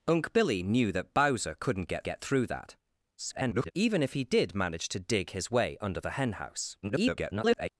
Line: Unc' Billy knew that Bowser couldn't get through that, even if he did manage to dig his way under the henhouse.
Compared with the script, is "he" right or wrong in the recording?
right